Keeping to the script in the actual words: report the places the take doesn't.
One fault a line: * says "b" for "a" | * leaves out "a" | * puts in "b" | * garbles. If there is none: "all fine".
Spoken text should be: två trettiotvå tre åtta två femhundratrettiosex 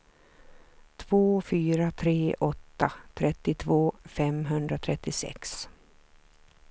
* says "fyra" for "trettiotvå"
* says "trettiotvå" for "två"